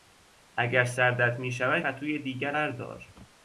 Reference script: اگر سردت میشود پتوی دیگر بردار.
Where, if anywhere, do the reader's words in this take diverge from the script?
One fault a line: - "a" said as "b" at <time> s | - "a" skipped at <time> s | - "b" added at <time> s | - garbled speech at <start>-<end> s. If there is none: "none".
none